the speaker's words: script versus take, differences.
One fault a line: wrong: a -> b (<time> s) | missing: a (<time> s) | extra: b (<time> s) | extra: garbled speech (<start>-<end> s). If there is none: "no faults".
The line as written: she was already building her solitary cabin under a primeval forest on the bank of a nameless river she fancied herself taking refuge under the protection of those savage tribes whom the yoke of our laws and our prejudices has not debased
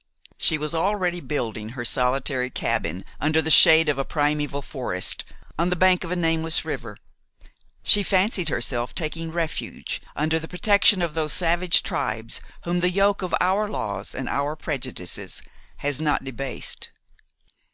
extra: the shade of (3.4 s)